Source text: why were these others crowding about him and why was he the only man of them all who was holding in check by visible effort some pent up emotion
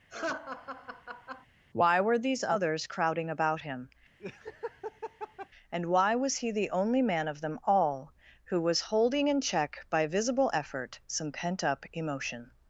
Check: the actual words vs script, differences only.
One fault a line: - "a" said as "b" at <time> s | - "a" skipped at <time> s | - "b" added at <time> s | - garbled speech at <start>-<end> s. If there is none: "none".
none